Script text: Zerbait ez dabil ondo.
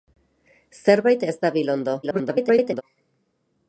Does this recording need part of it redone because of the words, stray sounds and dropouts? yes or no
yes